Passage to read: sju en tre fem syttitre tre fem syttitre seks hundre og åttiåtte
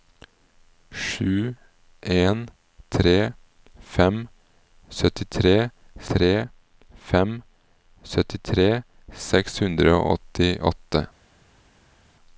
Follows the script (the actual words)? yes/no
yes